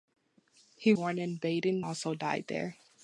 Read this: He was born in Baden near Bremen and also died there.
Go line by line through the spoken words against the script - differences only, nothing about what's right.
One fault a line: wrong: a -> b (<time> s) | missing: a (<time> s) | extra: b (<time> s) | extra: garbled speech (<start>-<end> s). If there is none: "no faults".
missing: was (0.9 s)
missing: near Bremen and (1.9 s)